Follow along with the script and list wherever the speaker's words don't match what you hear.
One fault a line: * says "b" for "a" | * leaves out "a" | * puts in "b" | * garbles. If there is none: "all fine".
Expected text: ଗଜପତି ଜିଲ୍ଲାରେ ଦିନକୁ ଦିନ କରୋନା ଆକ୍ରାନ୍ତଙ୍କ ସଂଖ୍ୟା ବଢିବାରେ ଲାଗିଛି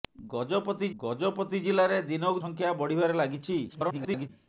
* puts in "ଗଜପତି"
* leaves out "ଦିନ କରୋନା ଆକ୍ରାନ୍ତଙ୍କ"
* garbles